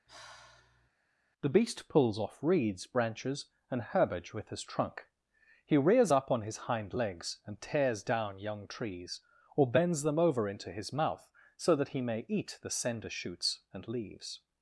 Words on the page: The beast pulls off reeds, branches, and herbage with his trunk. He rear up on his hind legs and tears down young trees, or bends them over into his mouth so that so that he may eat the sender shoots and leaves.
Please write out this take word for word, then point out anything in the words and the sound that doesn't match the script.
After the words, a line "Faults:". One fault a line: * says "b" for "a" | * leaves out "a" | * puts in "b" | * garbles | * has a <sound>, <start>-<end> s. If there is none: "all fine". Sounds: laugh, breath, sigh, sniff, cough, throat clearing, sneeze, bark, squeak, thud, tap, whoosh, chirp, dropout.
The beast pulls off reeds, branches, and herbage with his trunk. He rears up on his hind legs and tears down young trees, or bends them over into his mouth so that he may eat the sender shoots and leaves.
Faults:
* has a sigh, 0.1-0.9 s
* says "rears" for "rear"
* leaves out "so that"